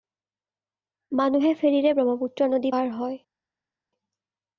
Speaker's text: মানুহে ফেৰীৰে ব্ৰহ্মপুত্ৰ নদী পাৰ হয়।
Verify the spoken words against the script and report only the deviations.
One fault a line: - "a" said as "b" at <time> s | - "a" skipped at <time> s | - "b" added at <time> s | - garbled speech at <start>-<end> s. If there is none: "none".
none